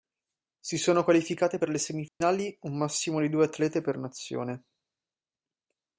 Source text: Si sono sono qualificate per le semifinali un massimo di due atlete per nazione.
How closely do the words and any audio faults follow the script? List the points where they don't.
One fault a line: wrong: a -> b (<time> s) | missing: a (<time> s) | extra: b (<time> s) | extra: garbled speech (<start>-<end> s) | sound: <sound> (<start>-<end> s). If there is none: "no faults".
missing: sono (1.0 s)
sound: dropout (2.1-2.2 s)